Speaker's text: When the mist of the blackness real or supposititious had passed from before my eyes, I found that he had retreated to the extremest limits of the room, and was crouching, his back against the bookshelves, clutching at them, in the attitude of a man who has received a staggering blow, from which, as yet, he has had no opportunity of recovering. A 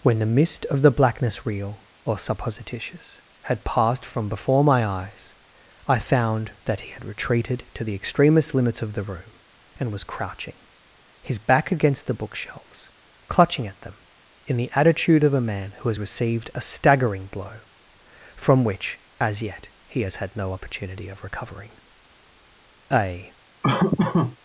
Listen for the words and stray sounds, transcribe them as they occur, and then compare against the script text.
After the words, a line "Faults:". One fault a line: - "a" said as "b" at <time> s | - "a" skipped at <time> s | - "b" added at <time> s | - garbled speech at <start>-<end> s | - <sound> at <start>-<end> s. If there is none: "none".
When the mist of the blackness real or supposititious had passed from before my eyes, I found that he had retreated to the extremest limits of the room, and was crouching, his back against the bookshelves, clutching at them, in the attitude of a man who has received a staggering blow, from which, as yet, he has had no opportunity of recovering. A
Faults:
- laugh at 23.6-24.4 s